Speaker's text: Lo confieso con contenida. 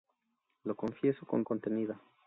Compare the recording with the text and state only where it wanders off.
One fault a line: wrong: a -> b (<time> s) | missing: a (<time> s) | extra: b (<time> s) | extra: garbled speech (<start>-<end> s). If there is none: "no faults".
no faults